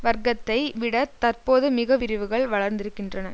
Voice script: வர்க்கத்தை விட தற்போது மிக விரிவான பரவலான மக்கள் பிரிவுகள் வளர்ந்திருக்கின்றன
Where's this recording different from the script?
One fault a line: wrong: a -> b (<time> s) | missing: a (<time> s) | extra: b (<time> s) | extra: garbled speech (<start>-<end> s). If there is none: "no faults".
missing: விரிவான பரவலான மக்கள் (2.0 s)